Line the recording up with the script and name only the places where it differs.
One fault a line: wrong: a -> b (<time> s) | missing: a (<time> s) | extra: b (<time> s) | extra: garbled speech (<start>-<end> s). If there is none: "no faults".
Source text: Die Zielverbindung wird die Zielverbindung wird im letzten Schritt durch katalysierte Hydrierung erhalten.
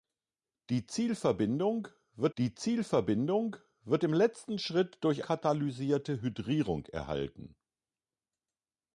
no faults